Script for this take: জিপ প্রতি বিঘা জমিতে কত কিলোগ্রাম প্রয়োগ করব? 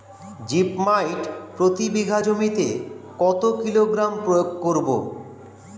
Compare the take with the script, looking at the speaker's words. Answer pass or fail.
fail